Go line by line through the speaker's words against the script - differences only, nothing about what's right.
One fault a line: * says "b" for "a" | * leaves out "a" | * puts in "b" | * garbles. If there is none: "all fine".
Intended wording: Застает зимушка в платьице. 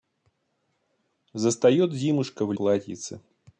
all fine